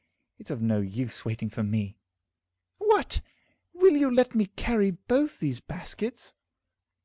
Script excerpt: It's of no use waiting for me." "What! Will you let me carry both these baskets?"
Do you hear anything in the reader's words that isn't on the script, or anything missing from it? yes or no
no